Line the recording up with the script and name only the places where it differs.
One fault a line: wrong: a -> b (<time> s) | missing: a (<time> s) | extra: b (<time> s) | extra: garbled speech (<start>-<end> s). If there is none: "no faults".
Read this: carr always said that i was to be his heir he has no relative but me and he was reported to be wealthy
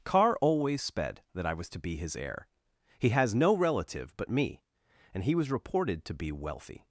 wrong: said -> sped (0.8 s)